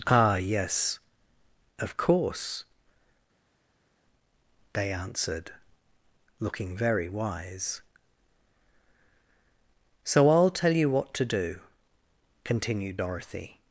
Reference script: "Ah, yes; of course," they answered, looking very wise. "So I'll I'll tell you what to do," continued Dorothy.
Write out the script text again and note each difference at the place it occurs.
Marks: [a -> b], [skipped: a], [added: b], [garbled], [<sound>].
"Ah, yes; of course," they answered, looking very wise. "So I'll [skipped: I'll] tell you what to do," continued Dorothy.